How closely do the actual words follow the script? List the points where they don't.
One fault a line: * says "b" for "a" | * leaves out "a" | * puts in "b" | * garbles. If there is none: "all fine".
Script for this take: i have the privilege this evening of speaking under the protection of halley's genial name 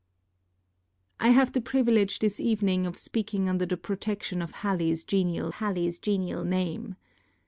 * puts in "halley's genial"